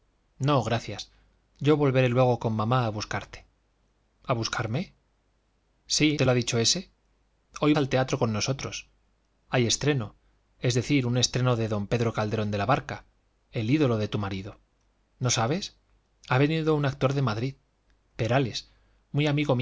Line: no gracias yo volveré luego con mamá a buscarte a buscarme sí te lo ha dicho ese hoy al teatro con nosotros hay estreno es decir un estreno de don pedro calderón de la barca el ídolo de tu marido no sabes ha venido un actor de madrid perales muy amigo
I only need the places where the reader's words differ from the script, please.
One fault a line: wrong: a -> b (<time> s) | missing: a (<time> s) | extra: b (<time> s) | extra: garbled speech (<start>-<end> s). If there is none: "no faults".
no faults